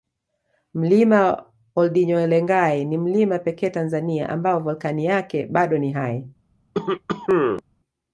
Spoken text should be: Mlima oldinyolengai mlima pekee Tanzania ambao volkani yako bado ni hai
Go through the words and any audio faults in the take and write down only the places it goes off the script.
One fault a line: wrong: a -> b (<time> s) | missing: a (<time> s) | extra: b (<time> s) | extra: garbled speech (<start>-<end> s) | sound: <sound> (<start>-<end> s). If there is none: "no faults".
extra: ni (2.9 s)
wrong: yako -> yake (5.0 s)
sound: cough (6.7-7.6 s)